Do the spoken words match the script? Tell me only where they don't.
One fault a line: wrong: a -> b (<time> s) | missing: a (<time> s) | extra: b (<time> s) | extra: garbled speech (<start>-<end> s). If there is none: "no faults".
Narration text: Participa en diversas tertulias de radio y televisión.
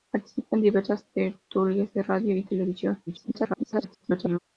extra: garbled speech (3.1-4.4 s)